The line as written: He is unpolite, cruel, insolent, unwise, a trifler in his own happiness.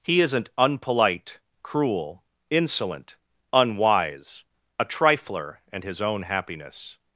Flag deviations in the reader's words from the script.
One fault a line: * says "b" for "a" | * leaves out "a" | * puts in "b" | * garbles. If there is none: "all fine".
* says "isn't" for "is"
* says "and" for "in"